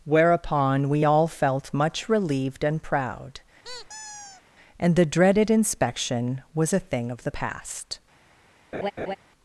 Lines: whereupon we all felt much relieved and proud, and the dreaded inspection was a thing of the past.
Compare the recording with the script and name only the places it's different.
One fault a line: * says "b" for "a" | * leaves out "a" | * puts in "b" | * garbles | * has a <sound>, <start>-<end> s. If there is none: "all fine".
* has a squeak, 3.6-4.4 s
* has a laugh, 8.7-9.2 s